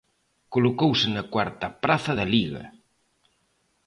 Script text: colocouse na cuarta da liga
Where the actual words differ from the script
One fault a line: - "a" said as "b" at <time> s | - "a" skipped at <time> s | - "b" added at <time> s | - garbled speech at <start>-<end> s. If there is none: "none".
- "praza" added at 1.8 s